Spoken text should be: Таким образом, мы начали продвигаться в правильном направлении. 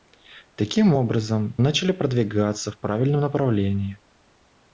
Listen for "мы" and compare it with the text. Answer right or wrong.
wrong